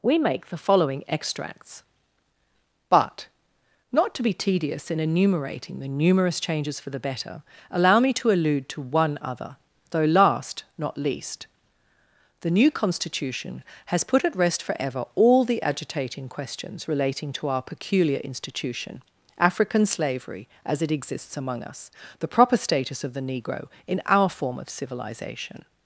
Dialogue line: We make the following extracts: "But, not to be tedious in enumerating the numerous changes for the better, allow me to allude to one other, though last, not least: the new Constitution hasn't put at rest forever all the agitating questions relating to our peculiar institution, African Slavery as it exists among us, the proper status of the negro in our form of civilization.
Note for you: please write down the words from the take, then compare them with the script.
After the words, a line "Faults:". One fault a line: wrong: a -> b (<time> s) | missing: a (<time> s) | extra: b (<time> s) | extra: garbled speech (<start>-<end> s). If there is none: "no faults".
We make the following extracts: "But, not to be tedious in enumerating the numerous changes for the better, allow me to allude to one other, though last, not least: the new Constitution has put at rest forever all the agitating questions relating to our peculiar institution, African Slavery as it exists among us, the proper status of the negro in our form of civilization.
Faults:
wrong: hasn't -> has (13.9 s)